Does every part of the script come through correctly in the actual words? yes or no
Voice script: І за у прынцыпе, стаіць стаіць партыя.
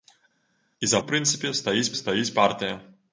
yes